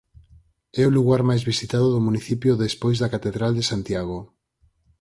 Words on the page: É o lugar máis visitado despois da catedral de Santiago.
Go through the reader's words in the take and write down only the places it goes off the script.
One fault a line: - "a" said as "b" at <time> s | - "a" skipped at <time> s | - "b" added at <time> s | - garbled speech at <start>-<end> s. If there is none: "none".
- "do municipio" added at 1.9 s